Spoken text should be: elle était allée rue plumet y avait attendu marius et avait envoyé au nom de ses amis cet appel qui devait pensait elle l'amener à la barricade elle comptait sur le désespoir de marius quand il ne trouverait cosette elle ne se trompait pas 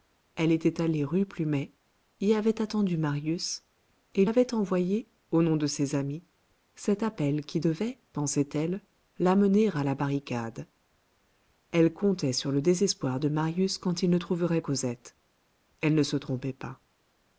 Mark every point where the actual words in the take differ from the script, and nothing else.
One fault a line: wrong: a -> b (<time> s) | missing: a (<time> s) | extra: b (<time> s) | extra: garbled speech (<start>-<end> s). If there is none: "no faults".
no faults